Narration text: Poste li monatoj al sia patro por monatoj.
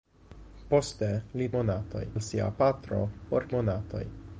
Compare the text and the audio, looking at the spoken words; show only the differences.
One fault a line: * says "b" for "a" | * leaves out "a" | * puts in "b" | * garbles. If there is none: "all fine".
all fine